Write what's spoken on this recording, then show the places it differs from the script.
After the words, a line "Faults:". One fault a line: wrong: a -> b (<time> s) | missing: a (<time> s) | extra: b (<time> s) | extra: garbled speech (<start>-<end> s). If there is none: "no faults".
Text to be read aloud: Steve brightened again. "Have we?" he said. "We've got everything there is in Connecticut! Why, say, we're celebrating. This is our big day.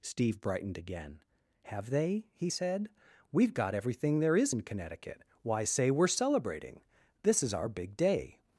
Steve brightened again. "Have they?" he said. "We've got everything there is in Connecticut! Why, say, we're celebrating. This is our big day.
Faults:
wrong: we -> they (1.9 s)